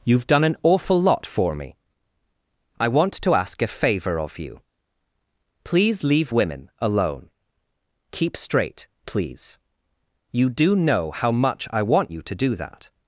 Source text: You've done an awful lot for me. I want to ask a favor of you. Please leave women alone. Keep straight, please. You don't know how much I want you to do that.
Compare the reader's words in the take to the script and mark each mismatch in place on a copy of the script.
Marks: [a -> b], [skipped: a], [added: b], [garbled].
You've done an awful lot for me. I want to ask a favor of you. Please leave women alone. Keep straight, please. You [don't -> do] know how much I want you to do that.